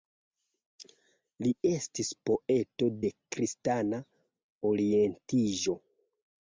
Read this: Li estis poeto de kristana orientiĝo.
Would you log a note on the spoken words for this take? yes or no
no